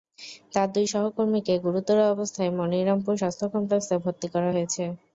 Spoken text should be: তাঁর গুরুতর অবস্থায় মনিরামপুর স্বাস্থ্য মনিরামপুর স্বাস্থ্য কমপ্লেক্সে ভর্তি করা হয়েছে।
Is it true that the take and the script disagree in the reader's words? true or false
true